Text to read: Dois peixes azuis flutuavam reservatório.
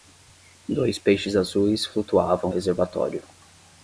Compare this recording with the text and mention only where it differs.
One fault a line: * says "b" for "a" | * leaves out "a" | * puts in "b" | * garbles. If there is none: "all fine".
all fine